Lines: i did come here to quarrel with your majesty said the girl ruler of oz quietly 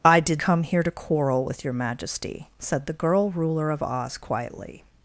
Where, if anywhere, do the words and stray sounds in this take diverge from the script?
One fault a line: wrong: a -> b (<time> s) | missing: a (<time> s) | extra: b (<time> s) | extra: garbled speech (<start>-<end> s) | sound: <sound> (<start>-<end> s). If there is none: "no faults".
no faults